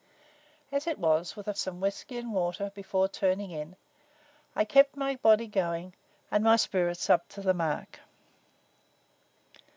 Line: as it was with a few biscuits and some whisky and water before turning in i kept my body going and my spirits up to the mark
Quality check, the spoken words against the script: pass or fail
fail